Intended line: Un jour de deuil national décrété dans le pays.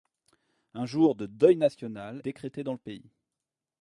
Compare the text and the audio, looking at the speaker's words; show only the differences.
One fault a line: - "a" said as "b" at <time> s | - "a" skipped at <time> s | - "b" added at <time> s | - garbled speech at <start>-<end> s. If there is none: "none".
none